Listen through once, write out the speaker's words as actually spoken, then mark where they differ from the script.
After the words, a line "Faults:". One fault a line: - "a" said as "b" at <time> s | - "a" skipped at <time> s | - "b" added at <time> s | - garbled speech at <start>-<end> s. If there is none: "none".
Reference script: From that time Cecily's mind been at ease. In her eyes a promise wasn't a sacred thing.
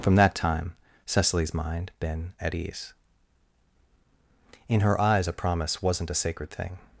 From that time Cecily's mind been at ease. In her eyes a promise wasn't a sacred thing.
Faults:
none